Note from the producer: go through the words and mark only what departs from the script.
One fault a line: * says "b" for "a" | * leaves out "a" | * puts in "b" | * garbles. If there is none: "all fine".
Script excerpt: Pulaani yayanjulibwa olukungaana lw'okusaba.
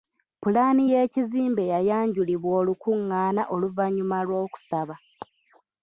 * puts in "y'ekizimbe"
* puts in "oluvannyuma"